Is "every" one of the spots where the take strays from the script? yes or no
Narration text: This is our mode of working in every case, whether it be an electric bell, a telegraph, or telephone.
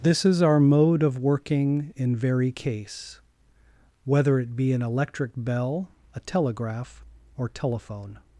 yes